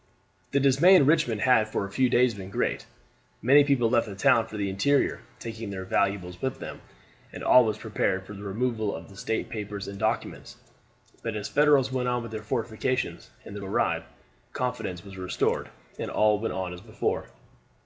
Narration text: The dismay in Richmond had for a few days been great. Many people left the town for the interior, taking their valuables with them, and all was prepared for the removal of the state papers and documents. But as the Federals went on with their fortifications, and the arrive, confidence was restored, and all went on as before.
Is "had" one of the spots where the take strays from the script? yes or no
no